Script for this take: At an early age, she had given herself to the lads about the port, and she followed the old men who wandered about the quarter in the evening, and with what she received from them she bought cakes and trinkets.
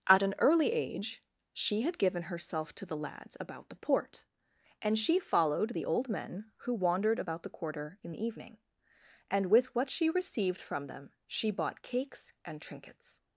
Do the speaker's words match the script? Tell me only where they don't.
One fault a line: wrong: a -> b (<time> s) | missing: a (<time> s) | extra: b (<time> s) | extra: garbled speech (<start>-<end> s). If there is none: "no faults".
no faults